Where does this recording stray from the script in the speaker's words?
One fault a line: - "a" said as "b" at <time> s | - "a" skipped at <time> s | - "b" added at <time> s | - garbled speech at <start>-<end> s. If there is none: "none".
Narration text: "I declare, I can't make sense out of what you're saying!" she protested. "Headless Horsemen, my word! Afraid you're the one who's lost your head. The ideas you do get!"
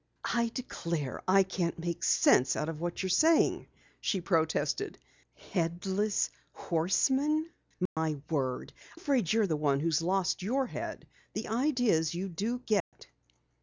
none